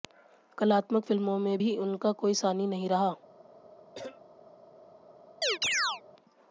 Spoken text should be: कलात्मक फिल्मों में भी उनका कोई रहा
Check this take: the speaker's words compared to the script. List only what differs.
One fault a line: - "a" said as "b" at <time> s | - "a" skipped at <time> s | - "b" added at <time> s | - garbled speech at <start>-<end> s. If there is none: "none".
- "सानी नहीं" added at 2.4 s